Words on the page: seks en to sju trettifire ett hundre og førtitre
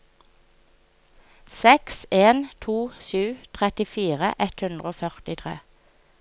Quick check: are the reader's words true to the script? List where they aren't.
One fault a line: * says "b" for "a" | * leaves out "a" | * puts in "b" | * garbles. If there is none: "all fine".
all fine